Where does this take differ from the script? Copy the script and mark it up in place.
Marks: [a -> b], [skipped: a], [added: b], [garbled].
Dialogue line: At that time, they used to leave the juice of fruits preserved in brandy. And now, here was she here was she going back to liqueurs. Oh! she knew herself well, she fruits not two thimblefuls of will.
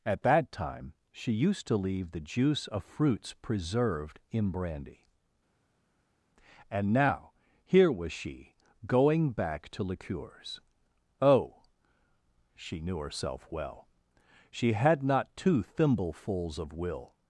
At that time, [they -> she] used to leave the juice of fruits preserved in brandy. And now, here was she [skipped: here was she] going back to liqueurs. Oh! she knew herself well, she [fruits -> had] not two thimblefuls of will.